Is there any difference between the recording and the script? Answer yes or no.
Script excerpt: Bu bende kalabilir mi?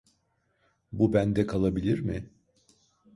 no